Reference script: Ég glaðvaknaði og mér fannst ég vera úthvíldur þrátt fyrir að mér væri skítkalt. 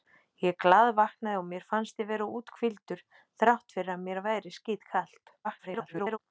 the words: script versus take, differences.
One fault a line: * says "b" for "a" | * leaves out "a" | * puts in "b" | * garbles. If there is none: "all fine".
* garbles